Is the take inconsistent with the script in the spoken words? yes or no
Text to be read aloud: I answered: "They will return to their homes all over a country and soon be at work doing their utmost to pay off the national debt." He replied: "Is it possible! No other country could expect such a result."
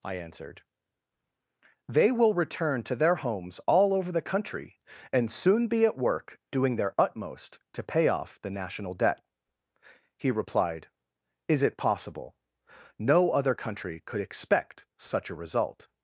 yes